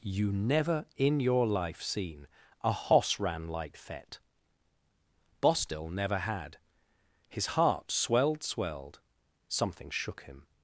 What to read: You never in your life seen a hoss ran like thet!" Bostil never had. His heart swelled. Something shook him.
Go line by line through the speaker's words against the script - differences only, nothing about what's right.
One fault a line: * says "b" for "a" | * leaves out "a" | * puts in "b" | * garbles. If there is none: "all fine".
* puts in "swelled"